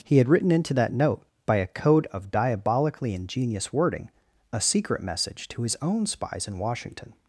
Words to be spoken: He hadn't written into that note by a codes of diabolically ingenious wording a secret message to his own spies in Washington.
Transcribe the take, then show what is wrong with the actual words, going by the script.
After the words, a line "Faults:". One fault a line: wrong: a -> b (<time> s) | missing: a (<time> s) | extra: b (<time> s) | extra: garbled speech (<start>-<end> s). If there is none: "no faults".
He had written into that note by a code of diabolically ingenious wording a secret message to his own spies in Washington.
Faults:
wrong: hadn't -> had (0.2 s)
wrong: codes -> code (1.7 s)